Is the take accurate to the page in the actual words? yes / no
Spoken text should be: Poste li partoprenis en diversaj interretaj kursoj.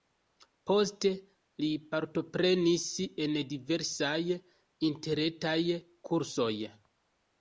yes